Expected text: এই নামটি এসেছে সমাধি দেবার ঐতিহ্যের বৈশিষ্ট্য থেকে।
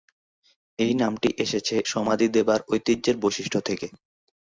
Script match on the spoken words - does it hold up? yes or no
yes